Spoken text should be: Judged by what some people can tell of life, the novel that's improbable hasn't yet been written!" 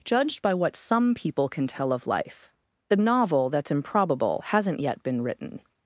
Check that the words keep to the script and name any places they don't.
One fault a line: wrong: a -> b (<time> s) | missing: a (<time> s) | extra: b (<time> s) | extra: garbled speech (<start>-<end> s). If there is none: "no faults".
no faults